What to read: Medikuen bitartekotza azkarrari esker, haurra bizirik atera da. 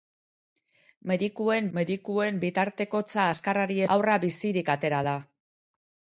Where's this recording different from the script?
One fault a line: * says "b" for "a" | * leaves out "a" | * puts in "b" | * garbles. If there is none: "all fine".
* puts in "medikuen"
* leaves out "esker"